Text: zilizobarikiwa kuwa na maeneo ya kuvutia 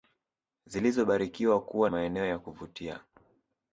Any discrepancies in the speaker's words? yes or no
yes